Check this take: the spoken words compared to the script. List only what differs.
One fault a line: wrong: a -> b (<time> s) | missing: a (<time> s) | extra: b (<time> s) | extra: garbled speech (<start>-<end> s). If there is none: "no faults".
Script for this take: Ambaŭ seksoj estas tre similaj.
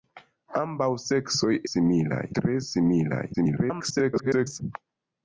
wrong: estas -> similaj (1.7 s)
extra: garbled speech (3.3-4.6 s)